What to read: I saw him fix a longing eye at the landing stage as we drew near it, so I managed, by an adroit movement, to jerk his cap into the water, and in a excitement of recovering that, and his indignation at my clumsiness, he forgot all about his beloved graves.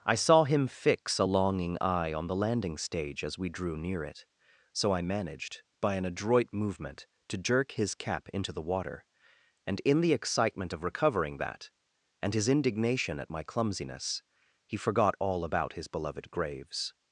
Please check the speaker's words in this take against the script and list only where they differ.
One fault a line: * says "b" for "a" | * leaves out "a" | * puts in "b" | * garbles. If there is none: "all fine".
* says "on" for "at"
* says "the" for "a"